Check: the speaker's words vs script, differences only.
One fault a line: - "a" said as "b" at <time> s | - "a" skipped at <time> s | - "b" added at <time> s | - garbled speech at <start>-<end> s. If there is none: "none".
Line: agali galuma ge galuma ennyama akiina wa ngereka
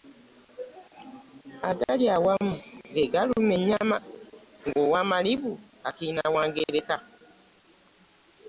- "galuma" said as "awamu" at 2.1 s
- "ng'owamalibu" added at 4.7 s